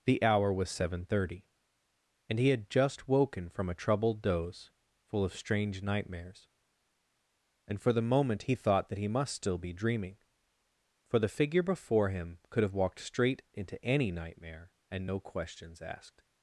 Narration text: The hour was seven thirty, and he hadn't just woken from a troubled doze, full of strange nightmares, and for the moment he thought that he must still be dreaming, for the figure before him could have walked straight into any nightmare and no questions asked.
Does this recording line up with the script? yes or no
no